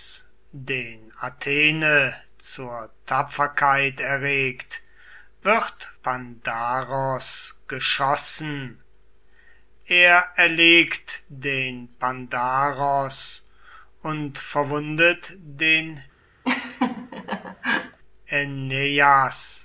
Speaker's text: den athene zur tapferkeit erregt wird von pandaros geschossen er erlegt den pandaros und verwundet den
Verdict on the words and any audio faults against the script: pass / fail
fail